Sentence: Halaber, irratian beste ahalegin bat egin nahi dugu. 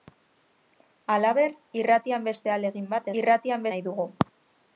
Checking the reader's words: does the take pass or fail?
fail